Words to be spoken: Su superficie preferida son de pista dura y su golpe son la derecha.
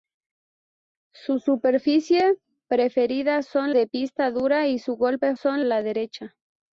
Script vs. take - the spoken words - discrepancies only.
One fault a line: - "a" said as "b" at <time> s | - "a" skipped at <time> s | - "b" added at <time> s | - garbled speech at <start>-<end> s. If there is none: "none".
none